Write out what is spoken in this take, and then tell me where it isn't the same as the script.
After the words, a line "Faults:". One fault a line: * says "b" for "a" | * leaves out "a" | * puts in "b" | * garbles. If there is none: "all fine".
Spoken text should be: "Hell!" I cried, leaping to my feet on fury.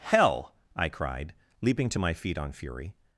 "Hell!" I cried, leaping to my feet on fury.
Faults:
all fine